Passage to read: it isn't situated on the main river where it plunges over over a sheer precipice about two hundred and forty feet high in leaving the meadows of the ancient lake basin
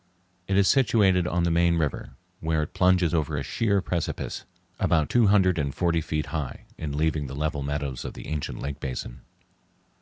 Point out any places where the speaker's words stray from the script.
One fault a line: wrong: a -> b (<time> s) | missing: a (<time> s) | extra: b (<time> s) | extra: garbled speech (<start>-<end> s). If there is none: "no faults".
wrong: isn't -> is (0.6 s)
missing: over (3.3 s)
extra: level (7.3 s)